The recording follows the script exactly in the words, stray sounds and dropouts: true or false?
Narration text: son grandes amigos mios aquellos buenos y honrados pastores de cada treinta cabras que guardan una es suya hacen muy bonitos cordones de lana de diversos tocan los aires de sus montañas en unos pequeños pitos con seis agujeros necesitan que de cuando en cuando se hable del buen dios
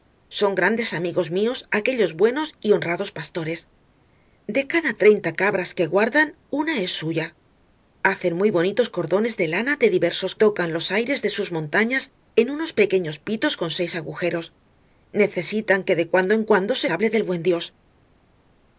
true